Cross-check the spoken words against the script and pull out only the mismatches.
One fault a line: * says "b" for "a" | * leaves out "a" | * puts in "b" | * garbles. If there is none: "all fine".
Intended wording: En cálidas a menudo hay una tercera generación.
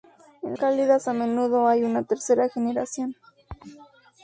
all fine